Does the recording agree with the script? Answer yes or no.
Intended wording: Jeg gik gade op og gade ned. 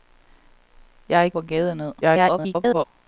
no